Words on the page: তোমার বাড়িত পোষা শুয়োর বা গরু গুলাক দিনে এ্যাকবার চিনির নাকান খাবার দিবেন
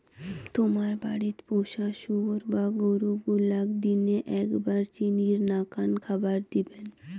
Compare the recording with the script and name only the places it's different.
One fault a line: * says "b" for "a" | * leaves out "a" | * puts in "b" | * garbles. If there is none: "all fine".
all fine